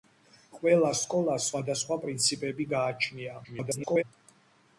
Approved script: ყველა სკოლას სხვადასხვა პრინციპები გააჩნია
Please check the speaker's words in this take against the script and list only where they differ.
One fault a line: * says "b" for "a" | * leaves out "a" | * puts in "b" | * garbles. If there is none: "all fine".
* garbles